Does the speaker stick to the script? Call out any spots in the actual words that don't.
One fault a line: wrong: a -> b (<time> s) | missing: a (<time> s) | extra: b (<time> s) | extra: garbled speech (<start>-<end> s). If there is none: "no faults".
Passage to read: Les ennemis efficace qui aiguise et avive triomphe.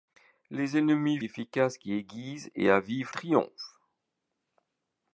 no faults